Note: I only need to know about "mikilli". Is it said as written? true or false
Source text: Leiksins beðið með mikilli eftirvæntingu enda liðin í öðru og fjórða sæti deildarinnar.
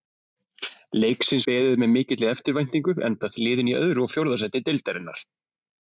true